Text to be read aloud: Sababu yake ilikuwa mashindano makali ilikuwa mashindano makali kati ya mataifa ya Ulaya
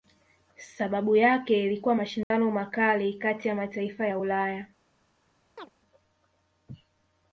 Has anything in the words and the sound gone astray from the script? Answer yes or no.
yes